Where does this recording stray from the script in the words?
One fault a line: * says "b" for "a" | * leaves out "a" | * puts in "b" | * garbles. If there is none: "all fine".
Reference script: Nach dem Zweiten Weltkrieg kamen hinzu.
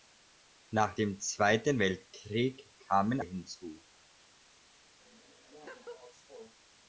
all fine